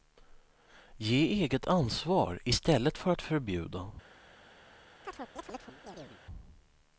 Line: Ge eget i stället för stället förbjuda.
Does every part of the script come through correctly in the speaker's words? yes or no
no